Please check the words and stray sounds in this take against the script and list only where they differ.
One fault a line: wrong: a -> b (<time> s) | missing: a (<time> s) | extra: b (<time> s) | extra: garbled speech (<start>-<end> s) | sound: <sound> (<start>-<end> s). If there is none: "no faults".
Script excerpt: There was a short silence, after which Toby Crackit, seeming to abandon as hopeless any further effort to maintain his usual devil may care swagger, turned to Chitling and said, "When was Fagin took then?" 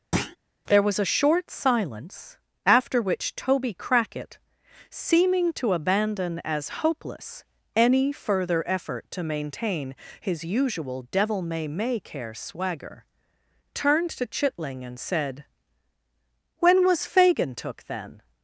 sound: thud (0.1-0.4 s)
extra: may (11.7 s)